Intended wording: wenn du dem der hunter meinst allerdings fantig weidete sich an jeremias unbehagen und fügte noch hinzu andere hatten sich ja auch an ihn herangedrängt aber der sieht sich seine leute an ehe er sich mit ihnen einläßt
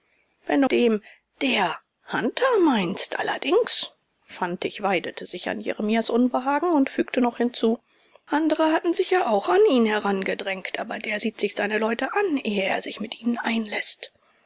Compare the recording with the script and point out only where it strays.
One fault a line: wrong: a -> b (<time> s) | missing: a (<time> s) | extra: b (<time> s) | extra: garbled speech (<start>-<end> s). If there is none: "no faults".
no faults